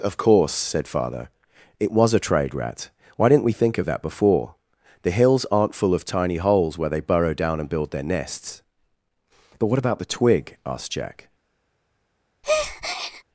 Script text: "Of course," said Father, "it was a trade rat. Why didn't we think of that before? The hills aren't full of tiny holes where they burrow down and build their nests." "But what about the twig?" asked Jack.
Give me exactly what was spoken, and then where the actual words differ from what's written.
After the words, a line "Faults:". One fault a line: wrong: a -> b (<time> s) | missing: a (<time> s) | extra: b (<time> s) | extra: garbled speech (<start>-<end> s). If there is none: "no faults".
"Of course," said Father, "it was a trade rat. Why didn't we think of that before? The hills aren't full of tiny holes where they burrow down and build their nests." "But what about the twig?" asked Jack.
Faults:
no faults